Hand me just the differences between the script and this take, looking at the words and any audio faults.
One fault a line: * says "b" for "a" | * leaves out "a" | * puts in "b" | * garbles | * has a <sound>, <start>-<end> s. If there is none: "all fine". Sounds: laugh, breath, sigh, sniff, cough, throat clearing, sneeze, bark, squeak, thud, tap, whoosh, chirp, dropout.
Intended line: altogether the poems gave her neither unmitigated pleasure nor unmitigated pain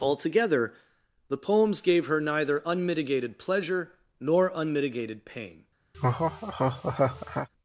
* has a laugh, 5.9-7.5 s